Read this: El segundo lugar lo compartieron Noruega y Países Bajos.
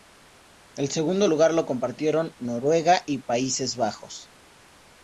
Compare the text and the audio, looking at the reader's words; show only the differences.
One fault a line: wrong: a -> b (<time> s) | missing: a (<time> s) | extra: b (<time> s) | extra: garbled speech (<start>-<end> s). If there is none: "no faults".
no faults